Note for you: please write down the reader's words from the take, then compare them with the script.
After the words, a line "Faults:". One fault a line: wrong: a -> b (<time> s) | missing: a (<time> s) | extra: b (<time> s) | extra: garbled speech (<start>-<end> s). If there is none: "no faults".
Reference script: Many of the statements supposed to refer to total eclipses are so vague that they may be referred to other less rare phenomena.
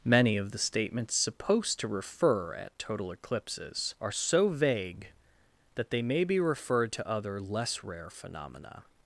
Many of the statements supposed to refer at total eclipses are so vague that they may be referred to other less rare phenomena.
Faults:
wrong: to -> at (2.5 s)